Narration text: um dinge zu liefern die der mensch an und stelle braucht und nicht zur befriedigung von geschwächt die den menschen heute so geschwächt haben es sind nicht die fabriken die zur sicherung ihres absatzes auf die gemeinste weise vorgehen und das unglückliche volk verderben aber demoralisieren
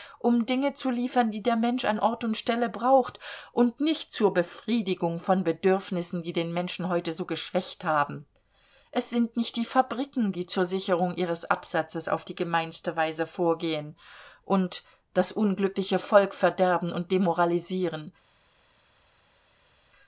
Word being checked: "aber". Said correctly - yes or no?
no